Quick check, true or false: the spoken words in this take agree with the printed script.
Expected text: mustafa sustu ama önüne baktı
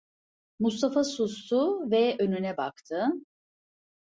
false